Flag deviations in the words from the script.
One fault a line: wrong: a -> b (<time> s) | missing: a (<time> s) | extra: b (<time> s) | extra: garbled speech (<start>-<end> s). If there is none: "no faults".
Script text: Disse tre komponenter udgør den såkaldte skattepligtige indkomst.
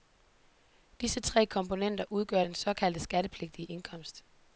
no faults